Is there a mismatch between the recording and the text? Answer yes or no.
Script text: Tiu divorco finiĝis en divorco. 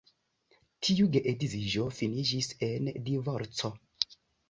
yes